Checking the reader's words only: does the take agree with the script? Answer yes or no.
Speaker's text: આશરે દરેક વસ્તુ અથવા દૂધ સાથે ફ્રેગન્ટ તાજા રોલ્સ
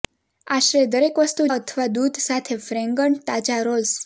yes